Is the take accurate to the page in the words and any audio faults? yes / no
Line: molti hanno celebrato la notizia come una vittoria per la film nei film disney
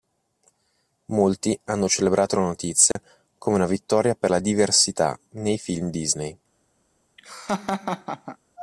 no